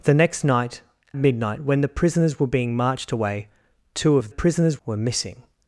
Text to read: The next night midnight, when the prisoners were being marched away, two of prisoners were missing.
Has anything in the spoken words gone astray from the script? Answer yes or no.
no